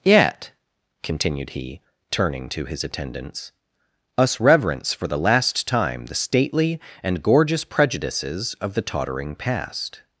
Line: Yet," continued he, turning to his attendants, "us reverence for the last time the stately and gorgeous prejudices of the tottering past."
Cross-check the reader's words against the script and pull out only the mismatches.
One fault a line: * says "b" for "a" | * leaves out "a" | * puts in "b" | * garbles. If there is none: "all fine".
all fine